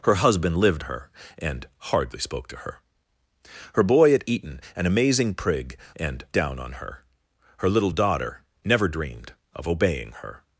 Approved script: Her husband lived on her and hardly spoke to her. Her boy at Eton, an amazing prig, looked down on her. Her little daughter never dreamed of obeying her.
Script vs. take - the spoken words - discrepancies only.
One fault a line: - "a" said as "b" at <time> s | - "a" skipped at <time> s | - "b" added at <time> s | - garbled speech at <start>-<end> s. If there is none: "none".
- "on" skipped at 0.8 s
- "looked" said as "and" at 6.0 s